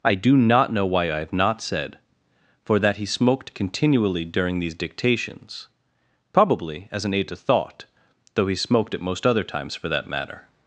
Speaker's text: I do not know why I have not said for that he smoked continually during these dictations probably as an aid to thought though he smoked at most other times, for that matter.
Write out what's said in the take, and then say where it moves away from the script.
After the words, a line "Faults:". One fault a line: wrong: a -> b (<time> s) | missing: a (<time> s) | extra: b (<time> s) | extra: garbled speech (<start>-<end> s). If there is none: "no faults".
I do not know why I have not said for that he smoked continually during these dictations probably as an aid to thought though he smoked at most other times, for that matter.
Faults:
no faults